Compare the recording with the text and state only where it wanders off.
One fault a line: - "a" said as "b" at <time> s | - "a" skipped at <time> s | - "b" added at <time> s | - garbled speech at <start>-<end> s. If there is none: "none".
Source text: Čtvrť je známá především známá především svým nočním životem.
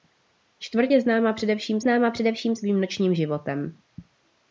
none